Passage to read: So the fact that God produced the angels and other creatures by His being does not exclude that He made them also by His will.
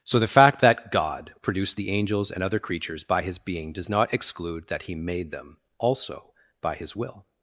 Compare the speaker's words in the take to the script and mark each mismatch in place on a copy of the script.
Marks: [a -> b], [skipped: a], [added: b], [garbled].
So the fact that God produced the angels and other creatures by His being does not exclude that He made them also by His will.